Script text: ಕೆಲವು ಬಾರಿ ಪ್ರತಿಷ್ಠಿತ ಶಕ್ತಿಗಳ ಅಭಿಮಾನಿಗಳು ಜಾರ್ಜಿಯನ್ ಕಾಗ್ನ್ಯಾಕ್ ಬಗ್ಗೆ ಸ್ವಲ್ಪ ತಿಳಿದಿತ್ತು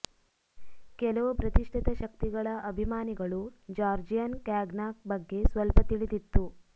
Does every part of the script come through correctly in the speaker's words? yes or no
no